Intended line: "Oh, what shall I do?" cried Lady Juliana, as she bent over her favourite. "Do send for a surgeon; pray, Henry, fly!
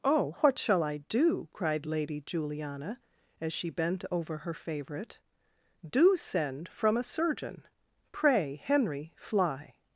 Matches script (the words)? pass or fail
fail